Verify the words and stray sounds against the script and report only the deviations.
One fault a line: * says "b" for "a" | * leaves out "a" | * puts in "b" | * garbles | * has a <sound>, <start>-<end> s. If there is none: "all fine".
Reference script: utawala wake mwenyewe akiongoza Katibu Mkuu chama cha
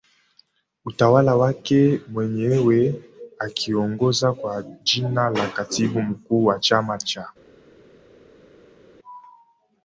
* puts in "kwa jina la"
* puts in "wa"